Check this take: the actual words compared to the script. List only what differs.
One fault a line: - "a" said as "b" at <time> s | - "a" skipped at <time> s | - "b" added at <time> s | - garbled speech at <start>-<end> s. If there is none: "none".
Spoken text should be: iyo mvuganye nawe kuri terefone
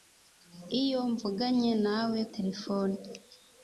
- "kuri" skipped at 2.2 s